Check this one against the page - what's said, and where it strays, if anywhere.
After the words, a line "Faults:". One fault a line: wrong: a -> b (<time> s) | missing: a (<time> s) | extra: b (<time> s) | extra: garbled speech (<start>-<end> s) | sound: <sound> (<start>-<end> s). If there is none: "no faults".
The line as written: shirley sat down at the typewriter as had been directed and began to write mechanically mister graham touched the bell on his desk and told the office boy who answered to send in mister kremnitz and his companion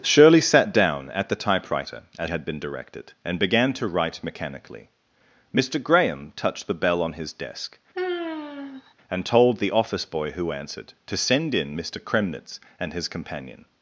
shirley sat down at the typewriter as had been directed and began to write mechanically mister graham touched the bell on his desk and told the office boy who answered to send in mister kremnitz and his companion
Faults:
sound: sigh (7.9-8.9 s)